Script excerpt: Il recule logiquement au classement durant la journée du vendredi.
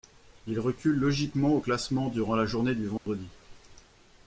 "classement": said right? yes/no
yes